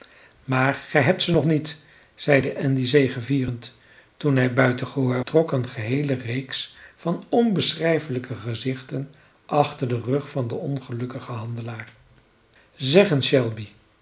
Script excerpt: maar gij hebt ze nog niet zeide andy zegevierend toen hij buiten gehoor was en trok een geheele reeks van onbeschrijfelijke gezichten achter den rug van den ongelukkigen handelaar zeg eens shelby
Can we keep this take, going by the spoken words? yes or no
no